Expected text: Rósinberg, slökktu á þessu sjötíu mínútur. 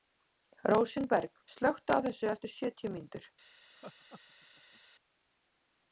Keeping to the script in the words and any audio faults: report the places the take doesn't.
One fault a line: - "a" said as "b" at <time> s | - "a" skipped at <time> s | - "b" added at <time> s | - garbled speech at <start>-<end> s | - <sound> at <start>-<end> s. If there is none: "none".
- "eftir" added at 2.4 s
- laugh at 3.7-4.8 s